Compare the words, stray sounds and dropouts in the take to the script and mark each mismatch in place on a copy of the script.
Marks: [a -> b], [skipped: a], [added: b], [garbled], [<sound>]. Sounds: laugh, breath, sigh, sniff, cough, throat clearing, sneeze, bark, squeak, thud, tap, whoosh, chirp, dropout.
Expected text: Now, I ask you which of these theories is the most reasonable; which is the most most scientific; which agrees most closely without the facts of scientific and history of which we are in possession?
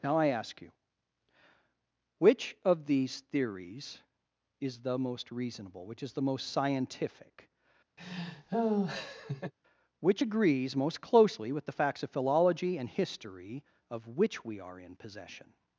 Now, I ask you which of these theories is the most reasonable; which is the most [skipped: most] scientific; [laugh] which agrees most closely [without -> with] the facts of [scientific -> philology] and history of which we are in possession?